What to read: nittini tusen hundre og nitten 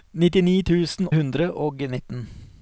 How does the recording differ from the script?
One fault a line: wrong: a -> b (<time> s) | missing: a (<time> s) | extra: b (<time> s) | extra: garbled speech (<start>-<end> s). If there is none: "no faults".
no faults